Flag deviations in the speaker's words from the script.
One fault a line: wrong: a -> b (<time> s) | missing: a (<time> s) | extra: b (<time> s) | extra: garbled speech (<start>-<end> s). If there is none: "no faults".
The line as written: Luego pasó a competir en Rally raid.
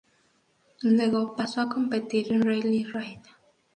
no faults